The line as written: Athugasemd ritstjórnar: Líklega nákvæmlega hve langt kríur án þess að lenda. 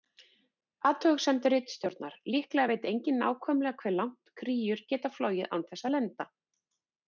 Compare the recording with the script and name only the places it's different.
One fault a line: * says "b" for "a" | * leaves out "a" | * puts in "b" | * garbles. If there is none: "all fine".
* puts in "veit enginn"
* puts in "geta flogið"